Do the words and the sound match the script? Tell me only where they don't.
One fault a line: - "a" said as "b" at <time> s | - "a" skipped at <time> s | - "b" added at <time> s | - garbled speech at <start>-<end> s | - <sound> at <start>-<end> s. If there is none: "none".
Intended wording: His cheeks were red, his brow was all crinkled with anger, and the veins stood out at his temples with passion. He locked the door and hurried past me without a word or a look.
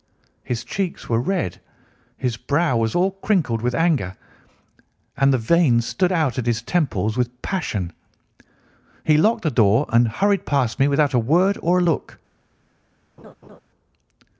- laugh at 13.2-13.6 s